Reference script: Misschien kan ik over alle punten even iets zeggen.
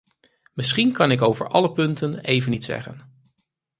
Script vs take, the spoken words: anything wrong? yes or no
no